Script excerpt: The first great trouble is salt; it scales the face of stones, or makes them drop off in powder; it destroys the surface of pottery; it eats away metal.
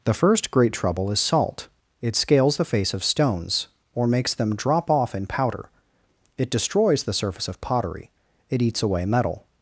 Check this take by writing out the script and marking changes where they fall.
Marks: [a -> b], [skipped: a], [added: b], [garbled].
The first great trouble is salt; it scales the face of stones, or makes them drop off in powder; it destroys the surface of pottery; it eats away metal.